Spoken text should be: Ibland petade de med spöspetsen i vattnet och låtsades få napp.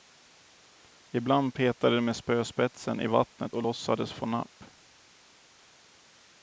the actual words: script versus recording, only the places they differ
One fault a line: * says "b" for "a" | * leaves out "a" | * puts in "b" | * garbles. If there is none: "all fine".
all fine